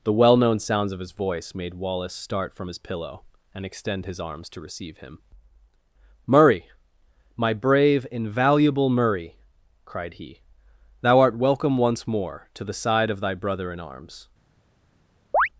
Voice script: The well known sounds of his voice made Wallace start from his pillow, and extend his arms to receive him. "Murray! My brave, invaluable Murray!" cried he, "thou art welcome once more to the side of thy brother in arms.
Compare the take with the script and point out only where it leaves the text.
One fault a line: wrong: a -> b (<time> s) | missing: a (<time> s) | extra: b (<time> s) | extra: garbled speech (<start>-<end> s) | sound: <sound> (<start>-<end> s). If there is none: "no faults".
sound: chirp (15.3-15.5 s)